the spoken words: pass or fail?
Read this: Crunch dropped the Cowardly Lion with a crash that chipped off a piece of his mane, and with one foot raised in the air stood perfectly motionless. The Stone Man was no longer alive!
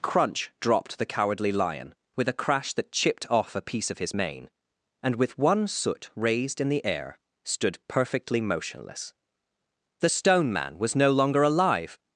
fail